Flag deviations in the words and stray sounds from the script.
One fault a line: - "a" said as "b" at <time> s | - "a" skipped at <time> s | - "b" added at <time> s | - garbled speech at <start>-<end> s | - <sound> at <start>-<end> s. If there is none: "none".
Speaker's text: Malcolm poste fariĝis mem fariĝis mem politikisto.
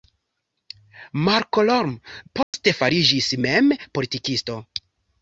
- dropout at 2.4-2.5 s
- "fariĝis mem" skipped at 3.7 s